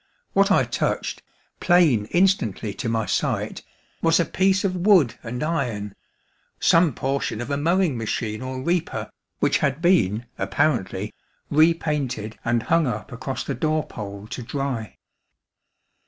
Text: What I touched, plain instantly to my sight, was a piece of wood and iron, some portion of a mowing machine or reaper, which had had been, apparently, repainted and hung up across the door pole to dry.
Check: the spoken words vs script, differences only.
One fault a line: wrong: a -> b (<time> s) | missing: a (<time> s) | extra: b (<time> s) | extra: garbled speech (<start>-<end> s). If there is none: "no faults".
missing: had (9.8 s)